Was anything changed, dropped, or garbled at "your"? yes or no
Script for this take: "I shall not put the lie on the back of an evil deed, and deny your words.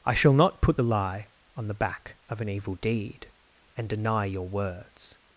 no